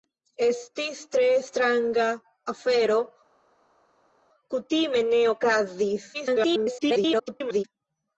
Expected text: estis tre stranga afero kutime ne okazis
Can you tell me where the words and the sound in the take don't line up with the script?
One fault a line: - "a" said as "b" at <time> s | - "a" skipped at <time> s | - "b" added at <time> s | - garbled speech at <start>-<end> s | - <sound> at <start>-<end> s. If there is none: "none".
- garbled speech at 6.1-7.6 s